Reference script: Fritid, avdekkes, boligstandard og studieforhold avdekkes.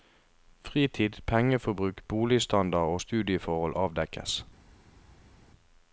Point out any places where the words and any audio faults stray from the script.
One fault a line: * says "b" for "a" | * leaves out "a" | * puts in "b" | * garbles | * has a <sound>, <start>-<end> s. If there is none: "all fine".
* says "pengeforbruk" for "avdekkes"